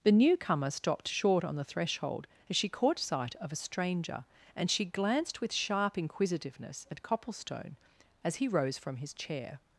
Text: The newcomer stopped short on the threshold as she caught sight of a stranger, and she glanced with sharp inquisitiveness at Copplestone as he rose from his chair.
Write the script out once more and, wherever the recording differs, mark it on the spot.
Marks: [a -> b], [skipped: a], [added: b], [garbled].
The newcomer stopped short on the threshold as she caught sight of a stranger, and she glanced with sharp inquisitiveness at Copplestone as he rose from his chair.